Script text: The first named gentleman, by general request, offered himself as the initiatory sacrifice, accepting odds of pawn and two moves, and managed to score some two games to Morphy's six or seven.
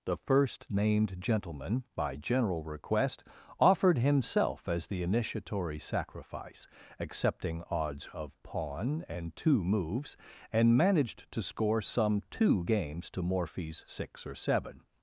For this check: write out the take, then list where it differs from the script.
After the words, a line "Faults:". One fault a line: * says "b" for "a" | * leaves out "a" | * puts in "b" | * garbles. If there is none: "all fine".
The first named gentleman, by general request, offered himself as the initiatory sacrifice, accepting odds of pawn and two moves, and managed to score some two games to Morphy's six or seven.
Faults:
all fine